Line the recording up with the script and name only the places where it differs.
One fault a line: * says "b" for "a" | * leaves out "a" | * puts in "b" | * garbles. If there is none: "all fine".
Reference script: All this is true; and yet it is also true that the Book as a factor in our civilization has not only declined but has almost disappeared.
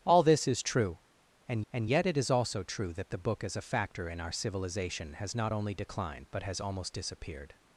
* puts in "and"